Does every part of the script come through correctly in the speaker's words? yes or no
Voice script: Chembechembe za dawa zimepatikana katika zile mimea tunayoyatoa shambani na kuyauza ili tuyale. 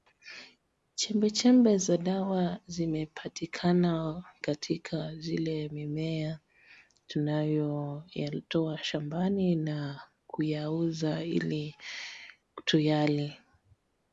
yes